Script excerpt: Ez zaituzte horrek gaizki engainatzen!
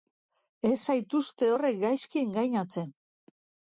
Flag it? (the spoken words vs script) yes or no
no